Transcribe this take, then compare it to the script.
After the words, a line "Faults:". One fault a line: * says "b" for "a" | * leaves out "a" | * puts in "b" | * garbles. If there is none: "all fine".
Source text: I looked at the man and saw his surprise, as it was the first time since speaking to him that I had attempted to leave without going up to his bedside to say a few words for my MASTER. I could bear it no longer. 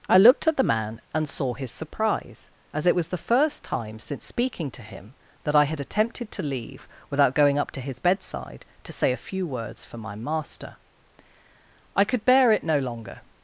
I looked at the man and saw his surprise, as it was the first time since speaking to him that I had attempted to leave without going up to his bedside to say a few words for my MASTER. I could bear it no longer.
Faults:
all fine